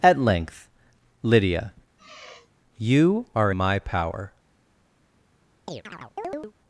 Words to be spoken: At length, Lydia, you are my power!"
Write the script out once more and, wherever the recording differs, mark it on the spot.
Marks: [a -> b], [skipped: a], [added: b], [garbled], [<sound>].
At length, Lydia, [sigh] you are my power!" [chirp]